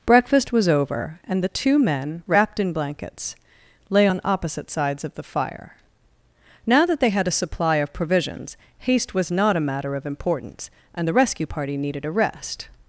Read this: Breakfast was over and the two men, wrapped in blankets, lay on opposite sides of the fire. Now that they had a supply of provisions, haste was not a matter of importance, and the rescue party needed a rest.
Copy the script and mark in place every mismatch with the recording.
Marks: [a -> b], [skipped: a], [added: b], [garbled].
Breakfast was over and the two men, wrapped in blankets, lay on opposite sides of the fire. Now that they had a supply of provisions, haste was not a matter of importance, and the rescue party needed a rest.